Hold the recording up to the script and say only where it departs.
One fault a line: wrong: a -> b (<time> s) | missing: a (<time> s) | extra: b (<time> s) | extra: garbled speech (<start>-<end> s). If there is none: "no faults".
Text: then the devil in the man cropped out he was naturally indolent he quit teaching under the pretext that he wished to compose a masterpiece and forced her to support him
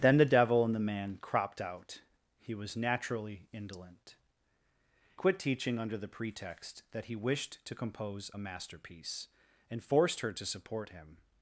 missing: he (4.2 s)